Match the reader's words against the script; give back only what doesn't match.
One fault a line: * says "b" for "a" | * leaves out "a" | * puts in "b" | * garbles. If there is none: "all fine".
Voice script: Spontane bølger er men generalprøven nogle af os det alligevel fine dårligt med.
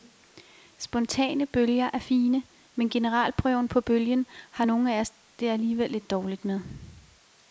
* puts in "fine"
* puts in "på bølgen har"
* says "lidt" for "fine"